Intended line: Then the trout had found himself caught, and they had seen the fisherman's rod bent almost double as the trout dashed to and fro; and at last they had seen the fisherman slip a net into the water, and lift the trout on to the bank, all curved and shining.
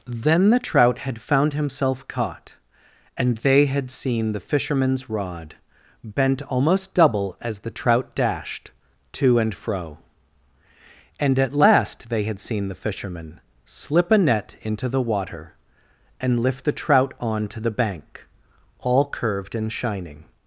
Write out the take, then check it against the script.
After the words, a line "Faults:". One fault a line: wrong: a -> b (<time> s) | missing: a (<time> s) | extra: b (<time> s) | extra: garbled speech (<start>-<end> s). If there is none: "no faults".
Then the trout had found himself caught, and they had seen the fisherman's rod bent almost double as the trout dashed to and fro; and at last they had seen the fisherman slip a net into the water, and lift the trout on to the bank, all curved and shining.
Faults:
no faults